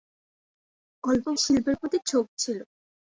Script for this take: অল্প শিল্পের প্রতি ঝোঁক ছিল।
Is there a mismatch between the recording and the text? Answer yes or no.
no